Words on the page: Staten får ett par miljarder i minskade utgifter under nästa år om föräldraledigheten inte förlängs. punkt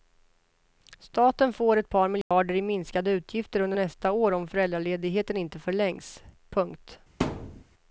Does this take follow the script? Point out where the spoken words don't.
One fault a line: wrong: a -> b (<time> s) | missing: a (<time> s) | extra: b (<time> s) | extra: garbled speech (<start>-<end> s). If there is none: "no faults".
no faults